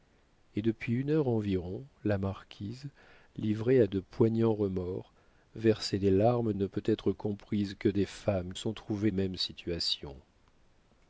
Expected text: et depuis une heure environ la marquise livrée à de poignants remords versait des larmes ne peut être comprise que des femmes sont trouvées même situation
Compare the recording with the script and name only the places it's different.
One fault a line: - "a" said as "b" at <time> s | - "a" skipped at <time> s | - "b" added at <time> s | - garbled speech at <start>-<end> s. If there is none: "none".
none